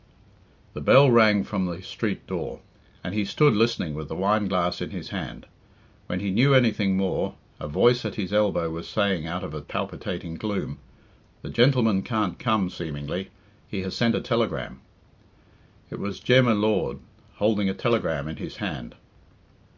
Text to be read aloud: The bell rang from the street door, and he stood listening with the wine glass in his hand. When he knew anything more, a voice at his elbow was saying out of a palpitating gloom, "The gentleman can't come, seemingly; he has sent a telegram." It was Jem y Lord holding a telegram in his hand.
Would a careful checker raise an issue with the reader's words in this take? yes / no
no